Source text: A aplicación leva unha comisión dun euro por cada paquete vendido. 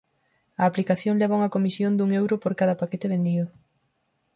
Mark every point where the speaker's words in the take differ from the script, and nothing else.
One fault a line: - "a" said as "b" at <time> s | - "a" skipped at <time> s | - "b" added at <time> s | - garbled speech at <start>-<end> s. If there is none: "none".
none